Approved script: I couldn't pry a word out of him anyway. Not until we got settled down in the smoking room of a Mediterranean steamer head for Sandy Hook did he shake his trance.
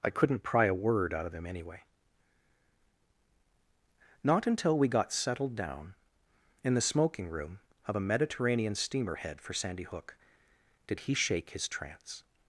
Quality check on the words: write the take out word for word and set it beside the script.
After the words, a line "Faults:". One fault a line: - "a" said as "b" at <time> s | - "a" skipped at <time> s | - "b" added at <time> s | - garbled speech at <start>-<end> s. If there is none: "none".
I couldn't pry a word out of him anyway. Not until we got settled down in the smoking room of a Mediterranean steamer head for Sandy Hook did he shake his trance.
Faults:
none